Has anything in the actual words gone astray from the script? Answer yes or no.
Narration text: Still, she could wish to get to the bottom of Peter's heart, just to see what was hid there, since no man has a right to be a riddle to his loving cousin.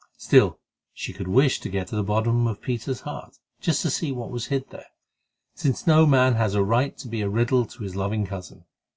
no